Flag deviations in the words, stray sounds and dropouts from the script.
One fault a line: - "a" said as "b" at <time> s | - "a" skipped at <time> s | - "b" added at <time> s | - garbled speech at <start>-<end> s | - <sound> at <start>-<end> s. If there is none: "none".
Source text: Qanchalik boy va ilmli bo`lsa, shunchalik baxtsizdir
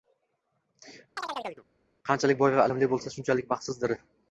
- chirp at 1.2-1.6 s